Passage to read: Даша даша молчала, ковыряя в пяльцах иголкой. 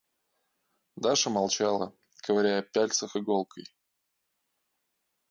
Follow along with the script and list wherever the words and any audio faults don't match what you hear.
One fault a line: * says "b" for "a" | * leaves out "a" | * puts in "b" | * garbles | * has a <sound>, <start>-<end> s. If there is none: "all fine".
* leaves out "даша"